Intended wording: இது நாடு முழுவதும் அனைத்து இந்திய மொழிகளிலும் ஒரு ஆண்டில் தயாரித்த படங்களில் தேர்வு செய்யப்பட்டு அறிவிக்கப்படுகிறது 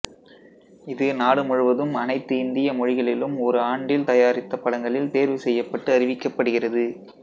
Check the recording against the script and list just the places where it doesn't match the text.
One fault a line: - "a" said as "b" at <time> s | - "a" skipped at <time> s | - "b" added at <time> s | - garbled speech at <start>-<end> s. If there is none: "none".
none